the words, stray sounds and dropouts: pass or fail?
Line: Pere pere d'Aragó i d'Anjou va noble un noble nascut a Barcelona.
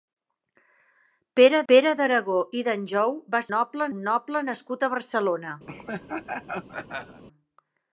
fail